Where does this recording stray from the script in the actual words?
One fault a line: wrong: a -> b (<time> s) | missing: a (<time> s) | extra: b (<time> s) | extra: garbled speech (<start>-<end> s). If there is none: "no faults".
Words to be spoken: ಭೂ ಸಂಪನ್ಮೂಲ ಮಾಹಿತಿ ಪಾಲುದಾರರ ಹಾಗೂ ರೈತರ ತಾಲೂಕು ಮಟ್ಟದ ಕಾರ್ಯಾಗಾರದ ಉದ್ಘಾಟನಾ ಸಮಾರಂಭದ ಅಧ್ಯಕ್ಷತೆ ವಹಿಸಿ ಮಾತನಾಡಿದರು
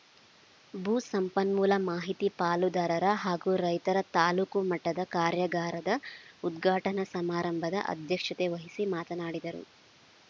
no faults